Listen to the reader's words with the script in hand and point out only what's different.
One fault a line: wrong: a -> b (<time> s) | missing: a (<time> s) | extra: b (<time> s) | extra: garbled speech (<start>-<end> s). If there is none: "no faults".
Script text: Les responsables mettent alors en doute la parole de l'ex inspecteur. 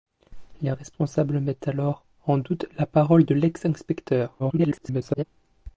extra: garbled speech (4.4-5.2 s)